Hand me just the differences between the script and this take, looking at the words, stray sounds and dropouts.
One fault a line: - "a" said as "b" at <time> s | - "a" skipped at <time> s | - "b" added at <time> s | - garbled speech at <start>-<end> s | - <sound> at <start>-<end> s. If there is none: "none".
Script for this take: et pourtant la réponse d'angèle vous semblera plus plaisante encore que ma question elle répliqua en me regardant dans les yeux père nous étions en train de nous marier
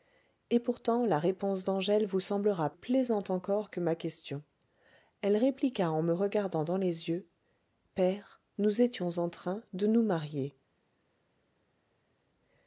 - "plus" skipped at 2.7 s